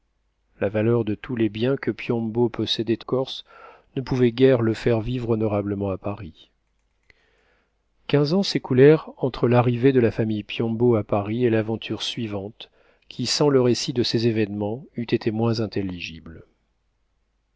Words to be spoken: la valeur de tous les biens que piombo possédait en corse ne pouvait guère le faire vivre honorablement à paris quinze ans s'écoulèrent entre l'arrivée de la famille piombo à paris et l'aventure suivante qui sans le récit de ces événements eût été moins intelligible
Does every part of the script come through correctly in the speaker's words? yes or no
no